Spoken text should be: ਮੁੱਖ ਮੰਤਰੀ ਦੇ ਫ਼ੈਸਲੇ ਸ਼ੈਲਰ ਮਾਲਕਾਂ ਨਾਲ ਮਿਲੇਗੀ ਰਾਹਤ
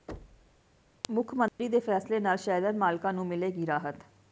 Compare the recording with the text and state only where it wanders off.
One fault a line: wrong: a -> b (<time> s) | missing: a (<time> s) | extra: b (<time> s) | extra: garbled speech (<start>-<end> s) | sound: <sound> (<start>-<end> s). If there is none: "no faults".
sound: thud (0.1-0.6 s)
sound: dropout (1.5-1.6 s)
extra: ਨਾਲ (2.2 s)
wrong: ਨਾਲ -> ਨੂੰ (3.1 s)